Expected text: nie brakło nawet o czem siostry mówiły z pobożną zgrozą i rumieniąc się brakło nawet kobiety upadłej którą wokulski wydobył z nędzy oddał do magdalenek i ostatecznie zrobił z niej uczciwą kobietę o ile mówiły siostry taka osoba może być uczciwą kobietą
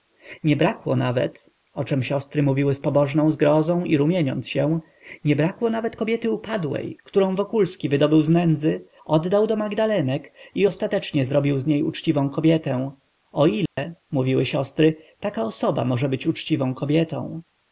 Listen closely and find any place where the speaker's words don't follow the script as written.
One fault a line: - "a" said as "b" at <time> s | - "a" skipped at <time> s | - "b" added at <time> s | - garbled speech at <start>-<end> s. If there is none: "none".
- "nie" added at 5.2 s